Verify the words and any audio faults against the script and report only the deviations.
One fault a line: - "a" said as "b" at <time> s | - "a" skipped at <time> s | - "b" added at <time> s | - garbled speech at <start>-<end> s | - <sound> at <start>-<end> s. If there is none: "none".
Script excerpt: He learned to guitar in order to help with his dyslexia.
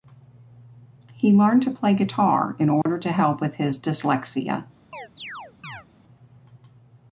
- "play" added at 1.7 s
- dropout at 2.8-2.9 s
- chirp at 4.9-5.9 s